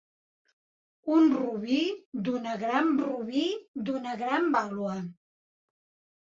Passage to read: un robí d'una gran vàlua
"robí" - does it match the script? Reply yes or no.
yes